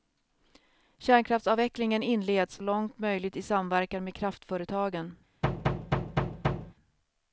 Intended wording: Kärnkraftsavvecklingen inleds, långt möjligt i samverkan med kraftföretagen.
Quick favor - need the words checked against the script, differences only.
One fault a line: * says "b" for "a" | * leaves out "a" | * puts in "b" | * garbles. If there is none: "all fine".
all fine